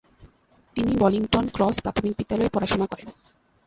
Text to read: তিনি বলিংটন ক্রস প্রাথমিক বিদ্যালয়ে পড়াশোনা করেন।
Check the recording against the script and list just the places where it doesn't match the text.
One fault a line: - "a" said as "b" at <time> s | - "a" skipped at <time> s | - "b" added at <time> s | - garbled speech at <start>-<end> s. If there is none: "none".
none